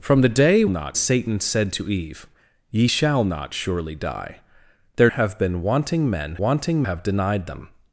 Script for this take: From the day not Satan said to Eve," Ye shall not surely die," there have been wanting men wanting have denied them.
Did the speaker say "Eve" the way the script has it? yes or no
yes